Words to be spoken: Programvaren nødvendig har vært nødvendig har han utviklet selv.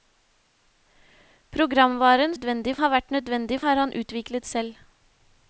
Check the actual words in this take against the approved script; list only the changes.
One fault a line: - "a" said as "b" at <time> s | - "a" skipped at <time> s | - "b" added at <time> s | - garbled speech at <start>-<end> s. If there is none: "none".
none